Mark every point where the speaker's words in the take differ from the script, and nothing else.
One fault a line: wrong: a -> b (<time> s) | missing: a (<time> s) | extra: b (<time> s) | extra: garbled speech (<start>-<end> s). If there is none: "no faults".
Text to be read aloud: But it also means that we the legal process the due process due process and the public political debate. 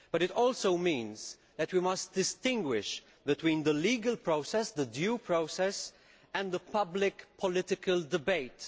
extra: must distinguish between (1.8 s)
missing: due process (5.9 s)